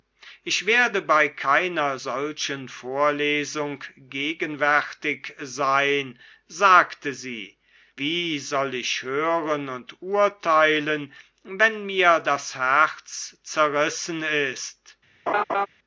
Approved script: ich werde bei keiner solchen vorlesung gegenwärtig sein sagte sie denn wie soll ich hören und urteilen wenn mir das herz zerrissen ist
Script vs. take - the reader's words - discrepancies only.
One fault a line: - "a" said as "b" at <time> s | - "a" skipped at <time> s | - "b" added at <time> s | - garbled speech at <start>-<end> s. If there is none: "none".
- "denn" skipped at 7.6 s